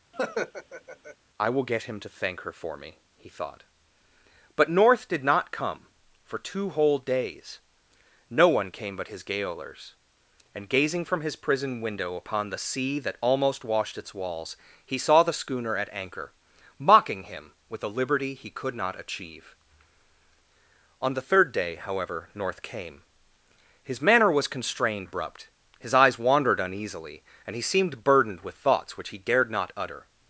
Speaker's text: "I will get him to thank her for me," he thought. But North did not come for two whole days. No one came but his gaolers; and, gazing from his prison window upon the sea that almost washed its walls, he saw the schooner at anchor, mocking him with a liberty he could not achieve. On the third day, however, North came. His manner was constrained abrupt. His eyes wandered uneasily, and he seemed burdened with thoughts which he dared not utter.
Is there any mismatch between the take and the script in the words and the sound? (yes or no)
yes